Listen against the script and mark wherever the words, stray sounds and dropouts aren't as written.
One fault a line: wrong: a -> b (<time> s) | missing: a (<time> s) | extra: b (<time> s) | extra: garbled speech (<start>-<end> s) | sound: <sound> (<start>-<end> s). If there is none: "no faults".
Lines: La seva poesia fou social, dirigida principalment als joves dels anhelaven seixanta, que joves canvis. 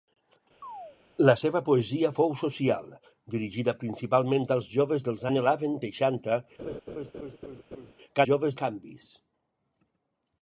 sound: chirp (0.6-1.0 s)
sound: laugh (6.6-7.9 s)